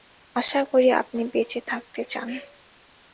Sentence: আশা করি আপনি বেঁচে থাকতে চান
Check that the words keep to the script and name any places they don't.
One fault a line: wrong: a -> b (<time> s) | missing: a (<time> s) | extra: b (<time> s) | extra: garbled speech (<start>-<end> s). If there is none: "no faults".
no faults